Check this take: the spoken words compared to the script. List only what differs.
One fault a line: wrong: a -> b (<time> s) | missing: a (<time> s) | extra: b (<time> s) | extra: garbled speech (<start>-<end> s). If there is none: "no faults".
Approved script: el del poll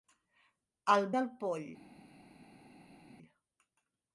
no faults